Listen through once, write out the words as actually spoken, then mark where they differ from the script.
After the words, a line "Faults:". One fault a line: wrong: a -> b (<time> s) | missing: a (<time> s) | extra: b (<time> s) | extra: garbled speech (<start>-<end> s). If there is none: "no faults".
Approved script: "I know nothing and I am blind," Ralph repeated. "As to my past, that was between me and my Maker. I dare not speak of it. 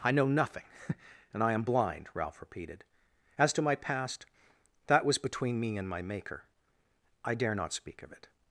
"I know nothing and I am blind," Ralph repeated. "As to my past, that was between me and my Maker. I dare not speak of it.
Faults:
no faults